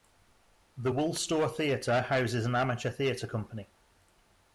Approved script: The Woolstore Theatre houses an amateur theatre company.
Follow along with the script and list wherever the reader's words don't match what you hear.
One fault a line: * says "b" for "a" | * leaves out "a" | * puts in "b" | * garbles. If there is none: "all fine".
all fine